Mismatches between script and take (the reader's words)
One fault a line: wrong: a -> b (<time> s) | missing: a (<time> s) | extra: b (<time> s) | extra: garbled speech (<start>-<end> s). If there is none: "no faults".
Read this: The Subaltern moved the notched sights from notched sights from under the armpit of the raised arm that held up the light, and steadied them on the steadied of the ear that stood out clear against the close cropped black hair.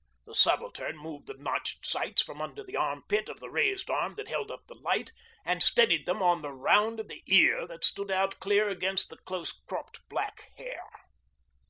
missing: notched sights from (2.4 s)
wrong: steadied -> round (6.5 s)